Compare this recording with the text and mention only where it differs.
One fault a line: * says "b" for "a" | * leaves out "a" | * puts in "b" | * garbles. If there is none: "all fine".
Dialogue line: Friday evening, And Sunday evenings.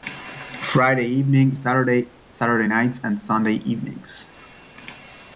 * puts in "Saturday Saturday Nights"